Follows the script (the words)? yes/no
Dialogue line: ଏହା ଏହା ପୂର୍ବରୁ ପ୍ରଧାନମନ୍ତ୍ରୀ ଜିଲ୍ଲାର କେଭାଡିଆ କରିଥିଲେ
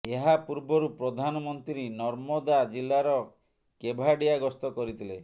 no